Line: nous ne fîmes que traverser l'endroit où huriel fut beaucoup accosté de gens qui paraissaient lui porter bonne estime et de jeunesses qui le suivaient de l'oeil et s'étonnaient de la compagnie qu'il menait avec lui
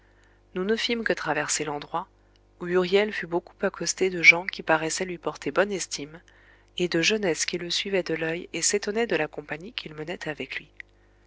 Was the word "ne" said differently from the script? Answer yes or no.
no